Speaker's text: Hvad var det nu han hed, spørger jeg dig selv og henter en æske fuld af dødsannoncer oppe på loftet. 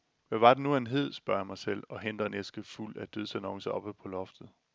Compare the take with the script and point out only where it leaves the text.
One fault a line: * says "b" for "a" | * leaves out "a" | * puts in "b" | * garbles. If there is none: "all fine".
* says "mig" for "dig"